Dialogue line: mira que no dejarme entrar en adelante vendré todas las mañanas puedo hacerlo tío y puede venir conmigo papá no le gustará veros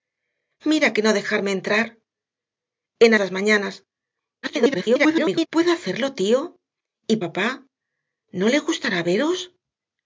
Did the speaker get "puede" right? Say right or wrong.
wrong